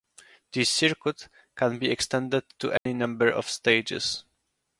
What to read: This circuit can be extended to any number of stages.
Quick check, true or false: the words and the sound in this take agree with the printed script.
false